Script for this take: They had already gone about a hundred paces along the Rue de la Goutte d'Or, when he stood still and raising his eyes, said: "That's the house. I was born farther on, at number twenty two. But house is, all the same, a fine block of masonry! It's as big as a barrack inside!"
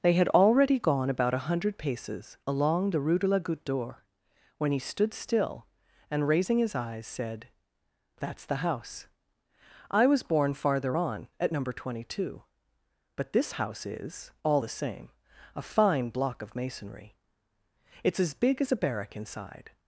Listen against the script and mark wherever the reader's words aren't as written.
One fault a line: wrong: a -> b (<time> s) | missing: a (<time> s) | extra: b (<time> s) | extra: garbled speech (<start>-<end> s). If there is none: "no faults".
extra: this (13.3 s)